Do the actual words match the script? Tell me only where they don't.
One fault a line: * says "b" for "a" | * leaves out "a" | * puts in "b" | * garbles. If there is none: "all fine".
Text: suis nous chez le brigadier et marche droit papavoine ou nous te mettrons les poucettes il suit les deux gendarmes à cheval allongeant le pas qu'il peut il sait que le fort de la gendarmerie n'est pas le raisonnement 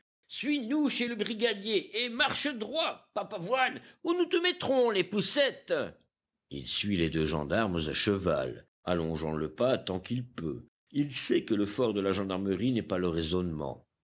* puts in "tant"